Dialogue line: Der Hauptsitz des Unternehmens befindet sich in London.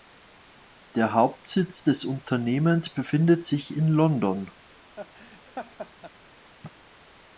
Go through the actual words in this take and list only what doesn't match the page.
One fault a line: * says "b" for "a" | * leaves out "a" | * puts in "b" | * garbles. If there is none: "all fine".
all fine